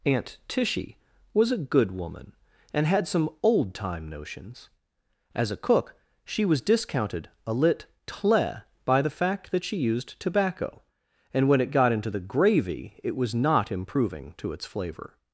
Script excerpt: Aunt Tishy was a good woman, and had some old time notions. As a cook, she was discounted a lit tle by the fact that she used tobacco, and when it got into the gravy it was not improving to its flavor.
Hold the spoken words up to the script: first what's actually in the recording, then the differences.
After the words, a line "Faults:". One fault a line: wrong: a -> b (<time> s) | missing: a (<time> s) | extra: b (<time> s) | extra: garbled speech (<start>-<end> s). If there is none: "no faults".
Aunt Tishy was a good woman, and had some old time notions. As a cook, she was discounted a lit tle by the fact that she used tobacco, and when it got into the gravy it was not improving to its flavor.
Faults:
no faults